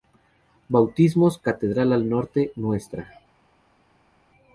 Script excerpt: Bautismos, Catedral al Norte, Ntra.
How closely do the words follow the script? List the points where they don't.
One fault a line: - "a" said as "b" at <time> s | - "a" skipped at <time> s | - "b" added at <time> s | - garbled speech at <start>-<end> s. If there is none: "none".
none